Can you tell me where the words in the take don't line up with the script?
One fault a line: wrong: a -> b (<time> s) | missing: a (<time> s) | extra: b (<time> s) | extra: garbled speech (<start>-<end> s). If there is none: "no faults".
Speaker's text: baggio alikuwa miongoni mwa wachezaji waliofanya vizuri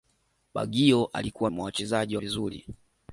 missing: miongoni (1.5 s)
missing: waliofanya (2.2 s)